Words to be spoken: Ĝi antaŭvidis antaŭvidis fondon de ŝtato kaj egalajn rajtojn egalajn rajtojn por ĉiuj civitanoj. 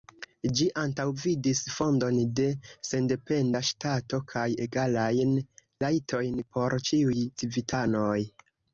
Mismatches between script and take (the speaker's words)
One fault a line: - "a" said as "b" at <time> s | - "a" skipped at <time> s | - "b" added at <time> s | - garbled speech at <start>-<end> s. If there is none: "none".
- "antaŭvidis" skipped at 1.6 s
- "sendependa" added at 2.9 s
- "egalajn rajtojn" skipped at 6.4 s